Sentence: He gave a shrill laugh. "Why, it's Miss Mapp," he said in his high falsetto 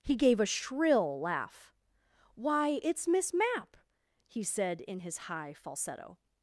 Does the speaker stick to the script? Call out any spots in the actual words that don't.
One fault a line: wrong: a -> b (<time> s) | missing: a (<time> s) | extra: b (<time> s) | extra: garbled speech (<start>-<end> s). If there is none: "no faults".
no faults